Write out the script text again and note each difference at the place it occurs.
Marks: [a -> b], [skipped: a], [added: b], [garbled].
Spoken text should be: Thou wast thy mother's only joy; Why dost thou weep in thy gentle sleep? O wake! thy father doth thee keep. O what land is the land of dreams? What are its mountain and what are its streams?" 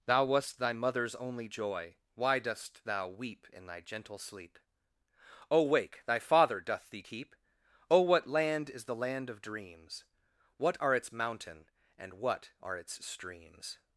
Thou wast thy mother's only joy; Why dost thou weep in thy gentle sleep? O wake! thy father doth thee keep. O what land is the land of dreams? What are its mountain and what are its streams?"